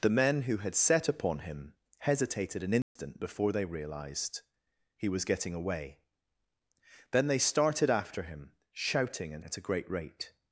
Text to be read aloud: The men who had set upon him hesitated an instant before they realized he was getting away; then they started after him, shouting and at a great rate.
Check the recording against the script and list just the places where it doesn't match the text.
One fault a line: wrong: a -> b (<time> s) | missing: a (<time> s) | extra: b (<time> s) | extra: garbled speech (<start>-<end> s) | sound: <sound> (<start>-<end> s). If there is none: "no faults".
sound: dropout (2.8-3.0 s)